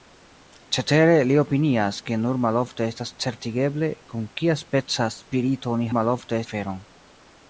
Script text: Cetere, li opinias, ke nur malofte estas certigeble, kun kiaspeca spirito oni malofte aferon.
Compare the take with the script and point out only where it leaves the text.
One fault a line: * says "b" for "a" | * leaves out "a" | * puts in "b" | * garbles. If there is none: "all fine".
all fine